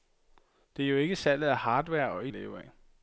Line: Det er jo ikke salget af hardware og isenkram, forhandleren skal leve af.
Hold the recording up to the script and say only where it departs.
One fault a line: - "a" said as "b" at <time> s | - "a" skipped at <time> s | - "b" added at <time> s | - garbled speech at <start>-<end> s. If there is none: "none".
- "isenkram forhandleren skal" skipped at 2.3 s